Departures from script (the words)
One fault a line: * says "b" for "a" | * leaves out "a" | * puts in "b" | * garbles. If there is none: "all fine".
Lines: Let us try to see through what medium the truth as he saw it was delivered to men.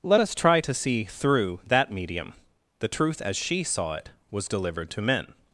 * says "that" for "what"
* says "she" for "he"